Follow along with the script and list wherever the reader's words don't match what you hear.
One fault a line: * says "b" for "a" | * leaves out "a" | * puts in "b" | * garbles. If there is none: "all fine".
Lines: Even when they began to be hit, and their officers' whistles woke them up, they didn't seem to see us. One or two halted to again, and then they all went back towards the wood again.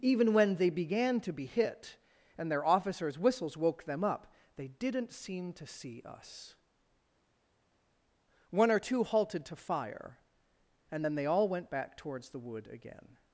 * says "fire" for "again"